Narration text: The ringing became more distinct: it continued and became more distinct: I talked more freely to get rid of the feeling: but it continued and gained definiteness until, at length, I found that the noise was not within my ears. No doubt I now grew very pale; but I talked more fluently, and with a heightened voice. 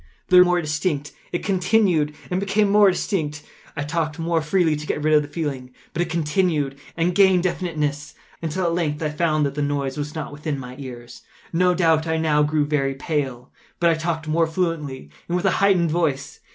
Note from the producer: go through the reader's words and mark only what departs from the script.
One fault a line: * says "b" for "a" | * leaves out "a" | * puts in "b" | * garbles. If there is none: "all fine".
* leaves out "ringing became"